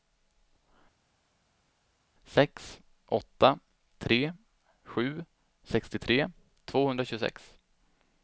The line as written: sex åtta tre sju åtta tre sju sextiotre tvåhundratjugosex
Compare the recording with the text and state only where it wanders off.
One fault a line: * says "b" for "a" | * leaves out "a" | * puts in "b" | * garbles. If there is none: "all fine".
* leaves out "åtta tre sju"